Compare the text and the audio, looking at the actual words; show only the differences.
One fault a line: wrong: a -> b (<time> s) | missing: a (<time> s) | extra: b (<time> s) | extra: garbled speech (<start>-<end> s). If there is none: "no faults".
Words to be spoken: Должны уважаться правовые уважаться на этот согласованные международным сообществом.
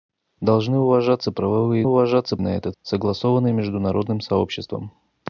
no faults